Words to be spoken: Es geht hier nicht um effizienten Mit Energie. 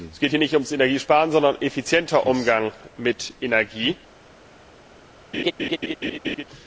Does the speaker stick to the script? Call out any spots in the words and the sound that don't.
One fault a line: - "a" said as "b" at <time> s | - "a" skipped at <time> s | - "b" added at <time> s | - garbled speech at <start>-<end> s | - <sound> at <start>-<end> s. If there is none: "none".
- "ums Energiesparen sondern" added at 0.5 s
- "Umgang" added at 2.2 s
- laugh at 5.3-6.4 s